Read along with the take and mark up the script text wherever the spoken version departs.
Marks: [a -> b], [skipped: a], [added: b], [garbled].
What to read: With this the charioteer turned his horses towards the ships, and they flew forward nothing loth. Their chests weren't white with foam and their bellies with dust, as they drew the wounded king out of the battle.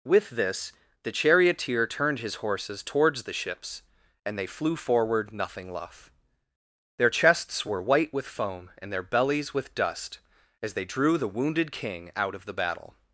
With this the charioteer turned his horses towards the ships, and they flew forward nothing loth. Their chests [weren't -> were] white with foam and their bellies with dust, as they drew the wounded king out of the battle.